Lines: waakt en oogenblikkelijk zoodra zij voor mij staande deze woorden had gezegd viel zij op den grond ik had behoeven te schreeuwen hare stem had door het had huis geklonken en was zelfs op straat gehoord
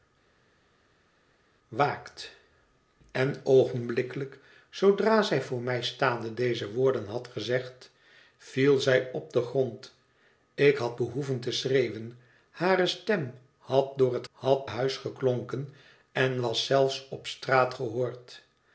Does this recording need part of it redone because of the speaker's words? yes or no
no